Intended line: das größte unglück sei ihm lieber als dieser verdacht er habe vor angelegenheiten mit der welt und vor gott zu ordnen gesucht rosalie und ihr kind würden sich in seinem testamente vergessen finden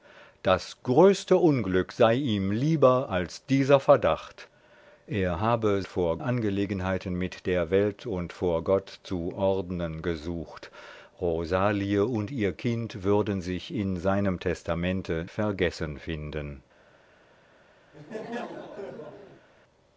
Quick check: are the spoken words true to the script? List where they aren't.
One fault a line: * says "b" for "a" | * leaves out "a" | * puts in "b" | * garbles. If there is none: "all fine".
all fine